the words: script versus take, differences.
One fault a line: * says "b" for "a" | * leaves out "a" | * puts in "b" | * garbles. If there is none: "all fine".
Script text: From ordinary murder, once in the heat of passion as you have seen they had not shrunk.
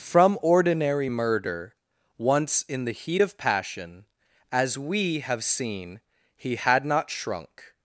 * says "we" for "you"
* says "he" for "they"